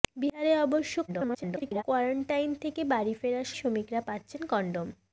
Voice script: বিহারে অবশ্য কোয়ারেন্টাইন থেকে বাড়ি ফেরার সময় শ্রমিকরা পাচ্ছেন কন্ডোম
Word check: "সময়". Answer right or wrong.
wrong